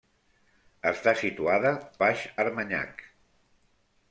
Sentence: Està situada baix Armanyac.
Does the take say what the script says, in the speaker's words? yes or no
yes